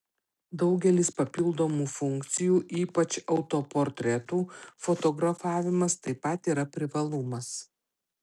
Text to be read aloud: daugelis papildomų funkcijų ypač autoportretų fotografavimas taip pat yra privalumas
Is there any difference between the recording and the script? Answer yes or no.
no